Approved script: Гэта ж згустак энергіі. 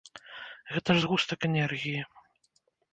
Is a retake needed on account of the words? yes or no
no